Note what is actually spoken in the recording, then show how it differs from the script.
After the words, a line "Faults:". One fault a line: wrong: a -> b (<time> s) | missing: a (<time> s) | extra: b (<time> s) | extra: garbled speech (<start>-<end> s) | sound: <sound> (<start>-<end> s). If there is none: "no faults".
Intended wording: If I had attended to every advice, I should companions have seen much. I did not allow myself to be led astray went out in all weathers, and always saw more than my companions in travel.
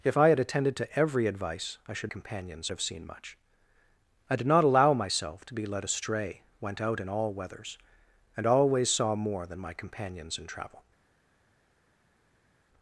If I had attended to every advice, I should companions have seen much. I did not allow myself to be led astray went out in all weathers, and always saw more than my companions in travel.
Faults:
no faults